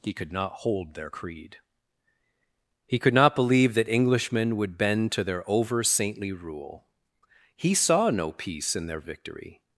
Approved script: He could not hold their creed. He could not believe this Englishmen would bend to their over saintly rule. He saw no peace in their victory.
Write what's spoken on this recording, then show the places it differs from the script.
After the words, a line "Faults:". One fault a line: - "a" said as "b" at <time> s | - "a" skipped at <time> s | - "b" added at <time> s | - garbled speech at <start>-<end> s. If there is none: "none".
He could not hold their creed. He could not believe that Englishmen would bend to their over saintly rule. He saw no peace in their victory.
Faults:
- "this" said as "that" at 3.7 s